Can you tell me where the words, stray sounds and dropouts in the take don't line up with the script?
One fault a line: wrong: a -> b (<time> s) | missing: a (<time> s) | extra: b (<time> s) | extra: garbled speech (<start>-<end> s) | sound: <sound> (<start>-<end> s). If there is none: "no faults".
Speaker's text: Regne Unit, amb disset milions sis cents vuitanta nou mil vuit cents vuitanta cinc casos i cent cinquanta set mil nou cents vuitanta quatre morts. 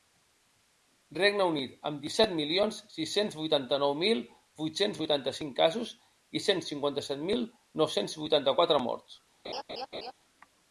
sound: laugh (9.4-10.1 s)